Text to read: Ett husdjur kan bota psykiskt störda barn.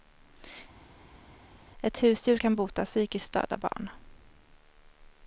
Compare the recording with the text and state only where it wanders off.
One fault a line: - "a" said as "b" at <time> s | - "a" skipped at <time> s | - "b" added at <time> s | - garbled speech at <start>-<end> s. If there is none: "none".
none